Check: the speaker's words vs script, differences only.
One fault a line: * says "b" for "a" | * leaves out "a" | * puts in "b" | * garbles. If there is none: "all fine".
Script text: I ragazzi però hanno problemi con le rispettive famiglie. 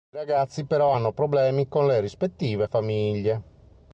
all fine